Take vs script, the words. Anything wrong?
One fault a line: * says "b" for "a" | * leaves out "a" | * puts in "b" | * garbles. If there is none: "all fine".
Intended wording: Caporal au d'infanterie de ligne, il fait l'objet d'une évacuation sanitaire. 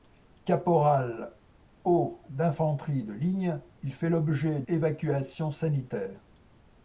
* leaves out "d'une"